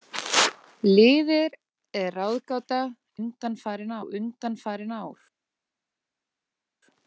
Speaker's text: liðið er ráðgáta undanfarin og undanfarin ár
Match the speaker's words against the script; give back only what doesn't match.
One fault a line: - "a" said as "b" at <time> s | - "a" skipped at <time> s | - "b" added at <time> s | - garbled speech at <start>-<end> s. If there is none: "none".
none